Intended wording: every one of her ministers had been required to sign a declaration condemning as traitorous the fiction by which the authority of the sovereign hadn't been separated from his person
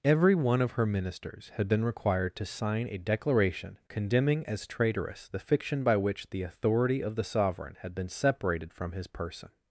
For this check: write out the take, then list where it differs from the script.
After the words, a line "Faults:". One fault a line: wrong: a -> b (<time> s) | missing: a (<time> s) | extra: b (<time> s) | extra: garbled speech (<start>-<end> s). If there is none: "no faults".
every one of her ministers had been required to sign a declaration condemning as traitorous the fiction by which the authority of the sovereign had been separated from his person
Faults:
wrong: hadn't -> had (7.8 s)